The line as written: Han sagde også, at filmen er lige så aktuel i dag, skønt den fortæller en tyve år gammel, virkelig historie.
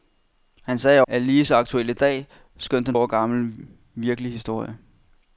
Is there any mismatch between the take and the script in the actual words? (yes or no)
yes